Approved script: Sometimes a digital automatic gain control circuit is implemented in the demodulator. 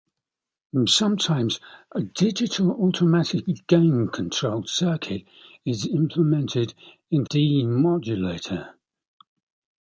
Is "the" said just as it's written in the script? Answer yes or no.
no